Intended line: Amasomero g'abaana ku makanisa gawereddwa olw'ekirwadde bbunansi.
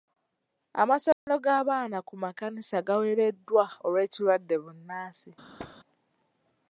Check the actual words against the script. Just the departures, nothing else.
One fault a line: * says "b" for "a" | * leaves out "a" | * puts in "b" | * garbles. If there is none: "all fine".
all fine